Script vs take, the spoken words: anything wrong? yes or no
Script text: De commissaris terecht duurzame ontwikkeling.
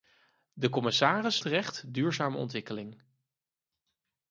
no